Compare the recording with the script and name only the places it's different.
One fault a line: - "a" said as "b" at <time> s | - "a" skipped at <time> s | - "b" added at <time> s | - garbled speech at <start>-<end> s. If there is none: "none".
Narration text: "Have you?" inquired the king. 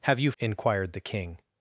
none